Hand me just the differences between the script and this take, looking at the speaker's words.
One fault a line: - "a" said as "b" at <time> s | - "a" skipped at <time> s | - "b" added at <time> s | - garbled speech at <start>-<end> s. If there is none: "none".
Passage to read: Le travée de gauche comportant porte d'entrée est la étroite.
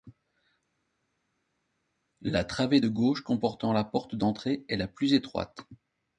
- "Le" said as "La" at 2.2 s
- "la" added at 3.7 s
- "plus" added at 4.9 s